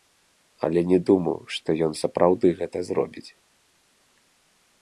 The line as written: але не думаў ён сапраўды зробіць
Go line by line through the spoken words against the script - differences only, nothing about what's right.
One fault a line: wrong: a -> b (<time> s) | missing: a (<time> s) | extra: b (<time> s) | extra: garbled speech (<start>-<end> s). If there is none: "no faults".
extra: што (1.6 s)
extra: гэта (2.6 s)